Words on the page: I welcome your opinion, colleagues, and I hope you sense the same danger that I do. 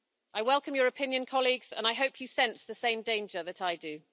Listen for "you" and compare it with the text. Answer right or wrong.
right